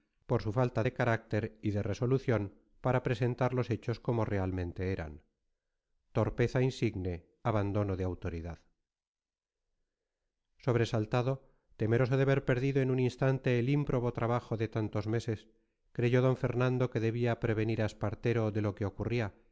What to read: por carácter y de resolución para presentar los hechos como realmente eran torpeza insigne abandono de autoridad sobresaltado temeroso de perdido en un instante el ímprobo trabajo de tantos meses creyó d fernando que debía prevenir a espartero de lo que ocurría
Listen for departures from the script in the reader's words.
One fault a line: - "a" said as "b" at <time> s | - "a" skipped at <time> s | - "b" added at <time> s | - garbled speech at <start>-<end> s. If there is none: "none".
- "su falta de" added at 0.4 s
- "ver" added at 12.2 s